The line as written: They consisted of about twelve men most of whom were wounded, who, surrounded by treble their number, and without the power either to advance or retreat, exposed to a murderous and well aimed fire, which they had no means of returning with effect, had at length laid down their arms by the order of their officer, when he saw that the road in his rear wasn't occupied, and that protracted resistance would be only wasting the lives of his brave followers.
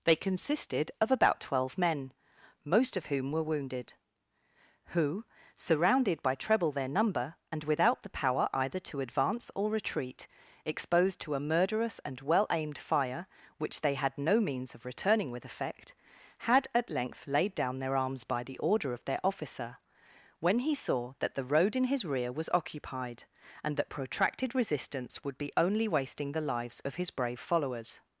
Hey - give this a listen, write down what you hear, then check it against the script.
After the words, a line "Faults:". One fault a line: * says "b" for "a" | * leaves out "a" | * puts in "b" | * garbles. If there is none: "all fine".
They consisted of about twelve men most of whom were wounded, who, surrounded by treble their number, and without the power either to advance or retreat, exposed to a murderous and well aimed fire, which they had no means of returning with effect, had at length laid down their arms by the order of their officer, when he saw that the road in his rear was occupied, and that protracted resistance would be only wasting the lives of his brave followers.
Faults:
* says "was" for "wasn't"